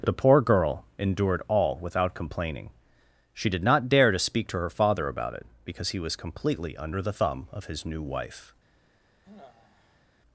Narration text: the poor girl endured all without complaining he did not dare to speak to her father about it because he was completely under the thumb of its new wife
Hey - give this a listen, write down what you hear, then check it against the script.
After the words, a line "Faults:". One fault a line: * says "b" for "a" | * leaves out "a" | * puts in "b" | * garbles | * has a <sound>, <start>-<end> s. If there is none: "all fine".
the poor girl endured all without complaining she did not dare to speak to her father about it because he was completely under the thumb of his new wife
Faults:
* says "she" for "he"
* says "his" for "its"
* has a sigh, 9.2-10.0 s